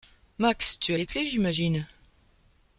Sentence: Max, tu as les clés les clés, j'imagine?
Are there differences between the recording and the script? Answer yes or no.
yes